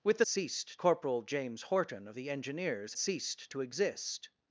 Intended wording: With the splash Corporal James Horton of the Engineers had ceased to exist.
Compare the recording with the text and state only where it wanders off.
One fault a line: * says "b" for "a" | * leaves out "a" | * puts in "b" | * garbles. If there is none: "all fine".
* says "ceased" for "splash"
* leaves out "had"